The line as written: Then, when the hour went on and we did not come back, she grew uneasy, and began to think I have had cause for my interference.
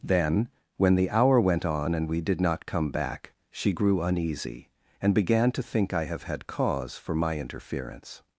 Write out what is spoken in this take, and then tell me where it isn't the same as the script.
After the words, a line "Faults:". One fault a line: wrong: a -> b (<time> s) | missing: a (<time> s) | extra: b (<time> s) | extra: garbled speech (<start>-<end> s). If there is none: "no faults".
Then, when the hour went on and we did not come back, she grew uneasy, and began to think I have had cause for my interference.
Faults:
no faults